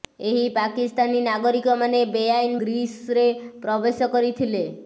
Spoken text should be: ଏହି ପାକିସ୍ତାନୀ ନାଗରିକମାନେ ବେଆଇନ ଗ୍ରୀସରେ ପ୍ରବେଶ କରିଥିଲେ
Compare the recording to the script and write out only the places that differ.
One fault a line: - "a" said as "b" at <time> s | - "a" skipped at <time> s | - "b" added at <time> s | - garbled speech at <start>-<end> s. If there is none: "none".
none